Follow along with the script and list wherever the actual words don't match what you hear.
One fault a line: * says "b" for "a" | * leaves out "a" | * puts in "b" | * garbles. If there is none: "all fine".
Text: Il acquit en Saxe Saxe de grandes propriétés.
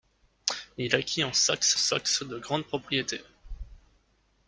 all fine